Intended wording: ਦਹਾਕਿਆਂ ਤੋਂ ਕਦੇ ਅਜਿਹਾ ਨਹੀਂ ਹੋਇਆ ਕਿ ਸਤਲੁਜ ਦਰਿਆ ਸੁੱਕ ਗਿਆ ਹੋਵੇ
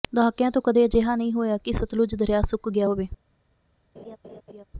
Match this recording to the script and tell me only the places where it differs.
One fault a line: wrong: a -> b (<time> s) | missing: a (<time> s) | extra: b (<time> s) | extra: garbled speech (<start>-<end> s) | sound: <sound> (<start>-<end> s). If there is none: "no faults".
sound: laugh (4.0-4.6 s)